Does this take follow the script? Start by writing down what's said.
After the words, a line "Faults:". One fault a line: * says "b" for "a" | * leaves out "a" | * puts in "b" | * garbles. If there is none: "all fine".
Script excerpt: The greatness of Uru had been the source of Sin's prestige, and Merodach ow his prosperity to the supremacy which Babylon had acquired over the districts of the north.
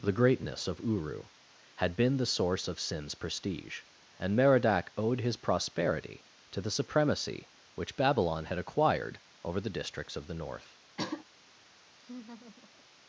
The greatness of Uru had been the source of Sin's prestige, and Merodach owed his prosperity to the supremacy which Babylon had acquired over the districts of the north.
Faults:
* says "owed" for "ow"